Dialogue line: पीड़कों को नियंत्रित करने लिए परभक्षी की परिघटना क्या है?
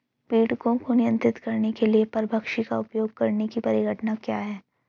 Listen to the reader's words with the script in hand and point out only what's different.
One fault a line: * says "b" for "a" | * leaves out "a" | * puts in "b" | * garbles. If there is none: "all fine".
* puts in "के"
* puts in "का उपयोग करने"